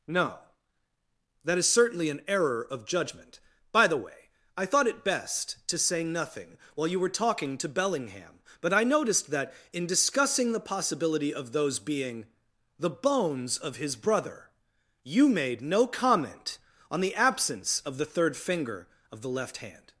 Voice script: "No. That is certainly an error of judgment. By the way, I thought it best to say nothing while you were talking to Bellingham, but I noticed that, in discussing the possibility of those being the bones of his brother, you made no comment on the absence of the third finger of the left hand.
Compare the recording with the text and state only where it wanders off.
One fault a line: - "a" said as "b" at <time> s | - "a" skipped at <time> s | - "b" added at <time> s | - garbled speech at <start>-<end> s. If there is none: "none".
none